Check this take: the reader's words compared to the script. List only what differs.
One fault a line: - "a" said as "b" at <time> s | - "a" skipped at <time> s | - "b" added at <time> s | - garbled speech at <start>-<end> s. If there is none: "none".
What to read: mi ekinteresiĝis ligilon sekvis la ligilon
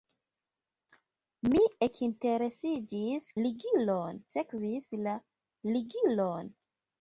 none